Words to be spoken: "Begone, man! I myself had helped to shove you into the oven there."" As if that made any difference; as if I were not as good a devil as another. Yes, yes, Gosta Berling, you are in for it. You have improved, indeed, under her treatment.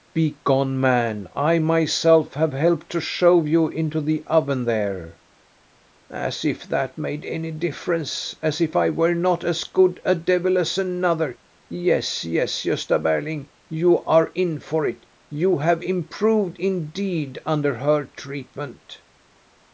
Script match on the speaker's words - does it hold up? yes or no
no